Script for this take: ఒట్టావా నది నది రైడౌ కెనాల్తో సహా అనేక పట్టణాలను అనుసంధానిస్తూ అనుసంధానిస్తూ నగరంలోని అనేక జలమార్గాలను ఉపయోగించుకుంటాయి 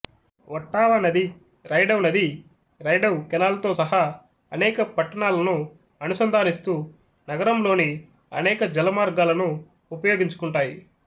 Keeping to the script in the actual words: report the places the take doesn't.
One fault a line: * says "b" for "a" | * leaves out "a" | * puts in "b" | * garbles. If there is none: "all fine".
* puts in "రైడౌ"
* leaves out "అనుసంధానిస్తూ"